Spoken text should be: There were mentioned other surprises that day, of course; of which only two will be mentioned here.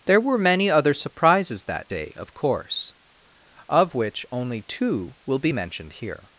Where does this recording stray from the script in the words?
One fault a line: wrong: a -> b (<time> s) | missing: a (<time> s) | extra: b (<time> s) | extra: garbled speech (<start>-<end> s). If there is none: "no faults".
wrong: mentioned -> many (0.4 s)